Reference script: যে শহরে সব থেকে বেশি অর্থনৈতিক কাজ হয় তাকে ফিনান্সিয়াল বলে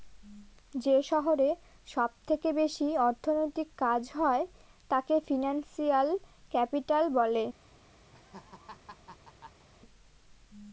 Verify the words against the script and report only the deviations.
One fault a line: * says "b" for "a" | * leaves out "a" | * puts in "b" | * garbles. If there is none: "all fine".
* puts in "ক্যাপিটাল"